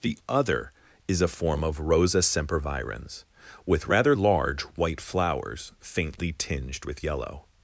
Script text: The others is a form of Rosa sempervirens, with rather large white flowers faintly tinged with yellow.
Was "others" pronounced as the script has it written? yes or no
no